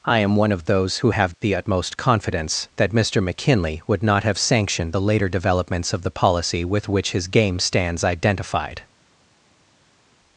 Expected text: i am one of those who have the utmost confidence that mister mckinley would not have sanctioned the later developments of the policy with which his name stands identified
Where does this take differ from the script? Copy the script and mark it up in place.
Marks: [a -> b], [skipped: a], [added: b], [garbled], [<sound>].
i am one of those who have the utmost confidence that mister mckinley would not have sanctioned the later developments of the policy with which his [name -> game] stands identified